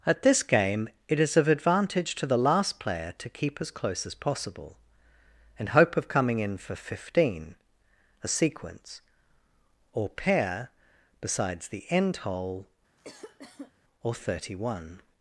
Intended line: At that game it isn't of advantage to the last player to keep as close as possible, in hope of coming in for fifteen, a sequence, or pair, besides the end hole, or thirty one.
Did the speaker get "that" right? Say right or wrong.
wrong